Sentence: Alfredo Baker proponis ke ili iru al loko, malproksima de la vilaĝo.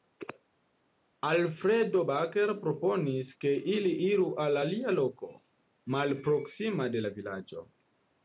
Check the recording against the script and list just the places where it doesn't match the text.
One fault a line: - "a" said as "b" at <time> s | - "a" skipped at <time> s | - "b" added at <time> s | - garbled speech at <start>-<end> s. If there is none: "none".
- "alia" added at 4.6 s